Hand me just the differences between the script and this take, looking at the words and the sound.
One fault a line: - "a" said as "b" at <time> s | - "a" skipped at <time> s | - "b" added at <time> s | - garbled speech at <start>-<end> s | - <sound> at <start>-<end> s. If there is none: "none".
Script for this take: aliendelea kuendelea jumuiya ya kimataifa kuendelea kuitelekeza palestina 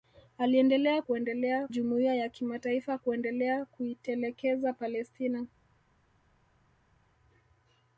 none